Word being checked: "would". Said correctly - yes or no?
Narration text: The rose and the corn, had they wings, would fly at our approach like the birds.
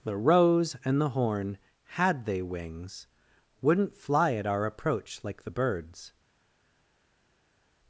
no